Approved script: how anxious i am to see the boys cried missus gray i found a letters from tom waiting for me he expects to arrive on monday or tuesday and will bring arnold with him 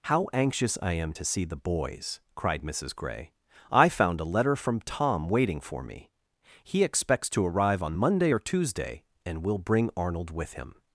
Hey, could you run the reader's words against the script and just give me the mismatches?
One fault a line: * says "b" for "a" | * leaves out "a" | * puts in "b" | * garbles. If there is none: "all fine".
* says "letter" for "letters"